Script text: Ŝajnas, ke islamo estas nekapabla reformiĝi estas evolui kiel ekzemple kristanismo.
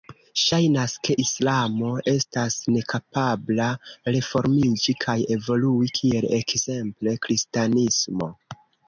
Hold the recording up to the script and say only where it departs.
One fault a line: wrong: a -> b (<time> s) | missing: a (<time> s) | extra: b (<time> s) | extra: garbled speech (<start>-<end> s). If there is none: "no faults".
wrong: estas -> kaj (5.1 s)